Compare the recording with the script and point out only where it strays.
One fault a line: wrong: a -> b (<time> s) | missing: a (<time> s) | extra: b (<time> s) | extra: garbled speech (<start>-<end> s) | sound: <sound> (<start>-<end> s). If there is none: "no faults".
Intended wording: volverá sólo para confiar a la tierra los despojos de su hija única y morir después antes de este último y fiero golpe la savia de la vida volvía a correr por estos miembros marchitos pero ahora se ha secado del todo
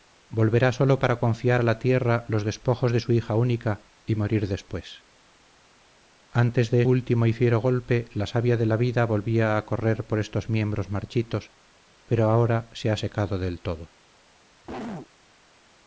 missing: este (6.8 s)
sound: cough (14.6-15.1 s)